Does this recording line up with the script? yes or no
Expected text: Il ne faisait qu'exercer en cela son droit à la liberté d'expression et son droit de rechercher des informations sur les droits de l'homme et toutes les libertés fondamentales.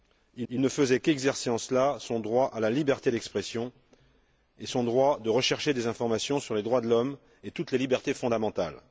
no